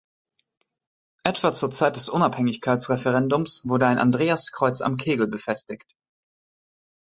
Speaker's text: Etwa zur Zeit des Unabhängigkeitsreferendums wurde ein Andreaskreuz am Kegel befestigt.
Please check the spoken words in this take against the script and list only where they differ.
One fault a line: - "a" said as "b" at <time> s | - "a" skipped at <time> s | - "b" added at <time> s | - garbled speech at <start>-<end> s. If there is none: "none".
none